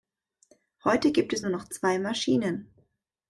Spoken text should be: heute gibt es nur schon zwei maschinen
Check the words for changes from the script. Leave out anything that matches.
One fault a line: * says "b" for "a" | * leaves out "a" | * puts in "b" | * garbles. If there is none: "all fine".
* says "noch" for "schon"